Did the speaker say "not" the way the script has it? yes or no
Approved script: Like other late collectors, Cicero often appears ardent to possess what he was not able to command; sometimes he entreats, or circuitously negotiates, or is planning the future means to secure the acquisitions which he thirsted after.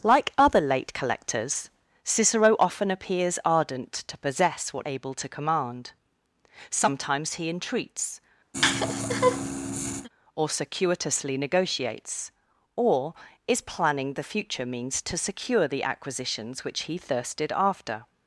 no